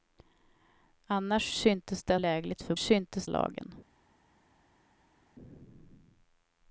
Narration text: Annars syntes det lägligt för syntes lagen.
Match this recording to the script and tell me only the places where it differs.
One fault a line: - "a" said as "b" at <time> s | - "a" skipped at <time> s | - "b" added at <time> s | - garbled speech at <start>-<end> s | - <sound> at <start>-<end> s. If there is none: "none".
none